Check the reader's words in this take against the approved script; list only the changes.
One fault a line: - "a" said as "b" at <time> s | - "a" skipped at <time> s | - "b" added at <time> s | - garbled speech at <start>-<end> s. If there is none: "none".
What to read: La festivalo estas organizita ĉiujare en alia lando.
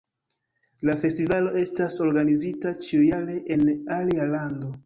none